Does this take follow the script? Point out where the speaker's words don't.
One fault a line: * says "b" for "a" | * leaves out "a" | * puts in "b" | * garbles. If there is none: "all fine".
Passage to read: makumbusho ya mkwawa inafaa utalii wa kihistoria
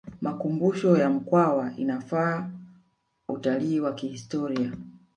all fine